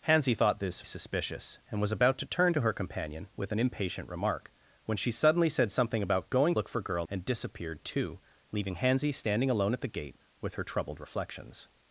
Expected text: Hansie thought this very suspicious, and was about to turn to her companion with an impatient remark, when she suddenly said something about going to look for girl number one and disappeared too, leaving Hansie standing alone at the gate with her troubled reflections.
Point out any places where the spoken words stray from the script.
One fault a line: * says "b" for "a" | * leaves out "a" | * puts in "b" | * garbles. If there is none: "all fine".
* leaves out "very"
* leaves out "to"
* leaves out "number one"